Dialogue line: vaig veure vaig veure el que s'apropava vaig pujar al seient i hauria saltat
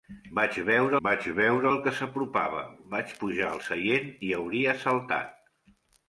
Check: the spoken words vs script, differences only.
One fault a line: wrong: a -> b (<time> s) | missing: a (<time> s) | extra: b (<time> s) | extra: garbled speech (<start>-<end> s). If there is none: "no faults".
no faults